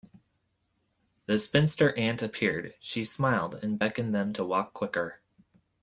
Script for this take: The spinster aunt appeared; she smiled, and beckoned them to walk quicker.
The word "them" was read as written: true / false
true